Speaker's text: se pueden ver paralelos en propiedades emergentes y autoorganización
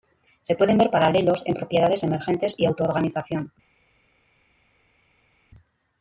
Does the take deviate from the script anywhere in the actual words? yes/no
no